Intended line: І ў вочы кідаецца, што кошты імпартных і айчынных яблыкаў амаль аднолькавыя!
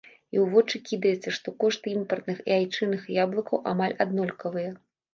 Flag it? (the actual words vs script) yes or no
no